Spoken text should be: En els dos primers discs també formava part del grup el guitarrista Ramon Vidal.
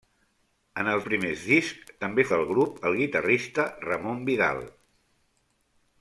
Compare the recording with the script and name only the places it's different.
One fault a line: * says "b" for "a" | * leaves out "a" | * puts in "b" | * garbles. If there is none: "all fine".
* leaves out "dos"
* leaves out "formava part"